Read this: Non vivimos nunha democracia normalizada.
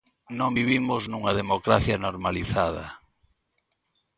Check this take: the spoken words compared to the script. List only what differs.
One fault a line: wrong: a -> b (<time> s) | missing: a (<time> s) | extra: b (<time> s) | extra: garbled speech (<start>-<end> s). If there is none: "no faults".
no faults